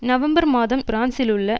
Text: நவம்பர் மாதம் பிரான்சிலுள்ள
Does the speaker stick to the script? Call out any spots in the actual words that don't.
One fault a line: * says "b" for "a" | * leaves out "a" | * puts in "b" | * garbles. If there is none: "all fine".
all fine